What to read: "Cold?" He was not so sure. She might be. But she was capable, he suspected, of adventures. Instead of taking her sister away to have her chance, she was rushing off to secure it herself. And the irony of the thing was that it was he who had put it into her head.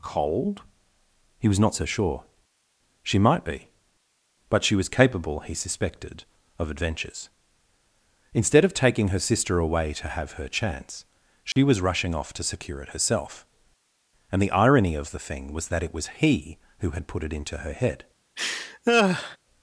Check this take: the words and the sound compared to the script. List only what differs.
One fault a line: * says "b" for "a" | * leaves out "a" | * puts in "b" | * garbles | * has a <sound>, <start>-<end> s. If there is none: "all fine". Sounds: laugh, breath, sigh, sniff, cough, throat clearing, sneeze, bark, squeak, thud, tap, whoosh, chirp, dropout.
* has a dropout, 11.5-11.6 s
* has a laugh, 18.4-19.4 s